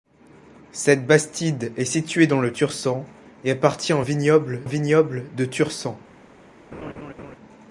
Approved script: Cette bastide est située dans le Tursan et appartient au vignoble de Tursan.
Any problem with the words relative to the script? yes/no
yes